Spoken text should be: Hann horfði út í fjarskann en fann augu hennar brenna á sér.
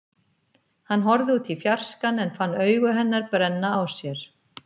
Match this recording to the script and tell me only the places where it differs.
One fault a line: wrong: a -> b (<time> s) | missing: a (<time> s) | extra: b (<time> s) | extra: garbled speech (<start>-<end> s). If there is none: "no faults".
no faults